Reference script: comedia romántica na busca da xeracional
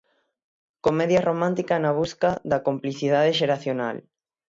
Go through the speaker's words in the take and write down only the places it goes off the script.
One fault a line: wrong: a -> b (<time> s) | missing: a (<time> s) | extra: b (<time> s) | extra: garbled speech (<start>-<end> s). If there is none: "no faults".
extra: complicidade (2.7 s)